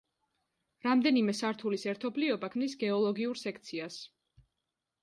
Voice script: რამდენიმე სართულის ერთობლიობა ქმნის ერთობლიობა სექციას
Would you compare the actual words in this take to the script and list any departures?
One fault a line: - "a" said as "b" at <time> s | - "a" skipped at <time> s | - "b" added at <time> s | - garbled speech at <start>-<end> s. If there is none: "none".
- "ერთობლიობა" said as "გეოლოგიურ" at 2.8 s